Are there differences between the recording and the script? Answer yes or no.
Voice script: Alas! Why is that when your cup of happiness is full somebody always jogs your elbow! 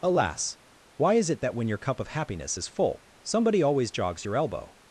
yes